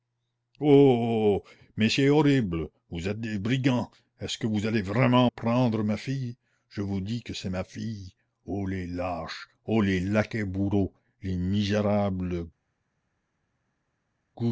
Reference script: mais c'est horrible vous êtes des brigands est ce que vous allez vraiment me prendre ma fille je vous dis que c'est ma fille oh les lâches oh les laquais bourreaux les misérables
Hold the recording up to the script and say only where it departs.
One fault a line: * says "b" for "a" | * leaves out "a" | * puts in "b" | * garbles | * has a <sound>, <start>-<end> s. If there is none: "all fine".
* leaves out "me"